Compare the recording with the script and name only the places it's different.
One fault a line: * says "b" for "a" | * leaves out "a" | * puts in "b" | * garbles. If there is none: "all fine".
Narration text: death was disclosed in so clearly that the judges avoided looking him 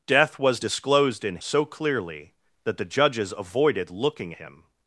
all fine